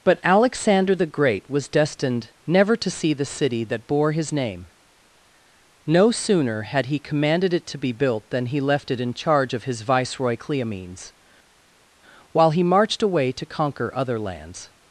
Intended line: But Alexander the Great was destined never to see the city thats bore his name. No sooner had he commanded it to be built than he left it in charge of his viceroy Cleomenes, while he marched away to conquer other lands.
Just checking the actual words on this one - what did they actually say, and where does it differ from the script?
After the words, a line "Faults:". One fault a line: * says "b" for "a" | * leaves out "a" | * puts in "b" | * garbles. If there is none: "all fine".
But Alexander the Great was destined never to see the city that bore his name. No sooner had he commanded it to be built than he left it in charge of his viceroy Cleomenes, while he marched away to conquer other lands.
Faults:
* says "that" for "thats"